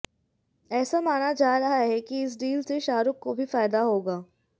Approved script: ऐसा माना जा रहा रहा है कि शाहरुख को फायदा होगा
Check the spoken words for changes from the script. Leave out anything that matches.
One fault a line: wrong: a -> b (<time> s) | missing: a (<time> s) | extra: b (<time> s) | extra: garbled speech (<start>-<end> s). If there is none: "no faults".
missing: रहा (1.8 s)
extra: इस डील से (2.2 s)
extra: भी (3.4 s)